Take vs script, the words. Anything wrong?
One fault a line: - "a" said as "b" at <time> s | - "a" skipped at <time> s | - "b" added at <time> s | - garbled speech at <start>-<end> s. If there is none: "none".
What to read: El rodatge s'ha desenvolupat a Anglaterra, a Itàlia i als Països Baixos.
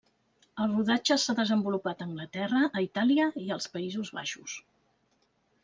none